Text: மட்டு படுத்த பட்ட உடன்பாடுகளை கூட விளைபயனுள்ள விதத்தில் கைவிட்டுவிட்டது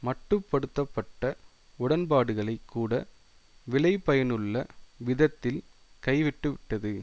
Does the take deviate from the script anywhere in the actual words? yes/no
no